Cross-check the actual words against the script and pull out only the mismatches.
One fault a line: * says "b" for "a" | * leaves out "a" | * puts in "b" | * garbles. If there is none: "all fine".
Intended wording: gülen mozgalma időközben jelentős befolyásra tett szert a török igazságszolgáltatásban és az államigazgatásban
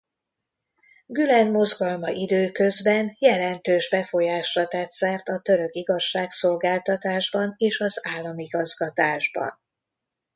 all fine